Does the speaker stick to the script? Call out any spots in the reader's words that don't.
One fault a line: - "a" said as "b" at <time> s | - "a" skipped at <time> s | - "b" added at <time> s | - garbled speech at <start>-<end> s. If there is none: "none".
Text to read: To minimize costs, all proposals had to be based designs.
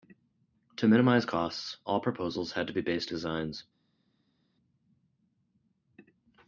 none